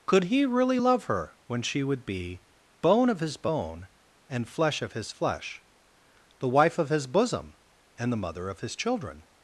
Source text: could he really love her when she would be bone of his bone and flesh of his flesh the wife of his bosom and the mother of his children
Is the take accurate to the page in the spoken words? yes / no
yes